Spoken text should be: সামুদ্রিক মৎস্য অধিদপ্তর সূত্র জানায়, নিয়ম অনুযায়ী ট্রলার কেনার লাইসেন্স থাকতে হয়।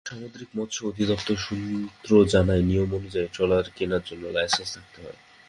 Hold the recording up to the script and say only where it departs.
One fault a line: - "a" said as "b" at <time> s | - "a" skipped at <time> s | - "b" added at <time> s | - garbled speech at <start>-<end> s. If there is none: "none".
- "জন্য" added at 4.0 s